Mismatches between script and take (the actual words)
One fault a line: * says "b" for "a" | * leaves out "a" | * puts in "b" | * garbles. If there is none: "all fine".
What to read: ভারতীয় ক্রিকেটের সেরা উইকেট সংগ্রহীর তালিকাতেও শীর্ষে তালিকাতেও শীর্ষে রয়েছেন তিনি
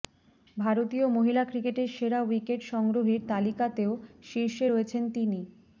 * puts in "মহিলা"
* leaves out "তালিকাতেও শীর্ষে"